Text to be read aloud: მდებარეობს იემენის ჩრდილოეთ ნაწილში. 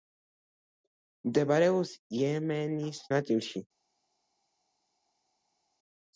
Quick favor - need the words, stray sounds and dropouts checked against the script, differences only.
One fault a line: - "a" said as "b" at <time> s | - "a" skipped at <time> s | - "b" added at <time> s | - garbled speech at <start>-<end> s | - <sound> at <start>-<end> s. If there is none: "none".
- "ჩრდილოეთ" skipped at 3.0 s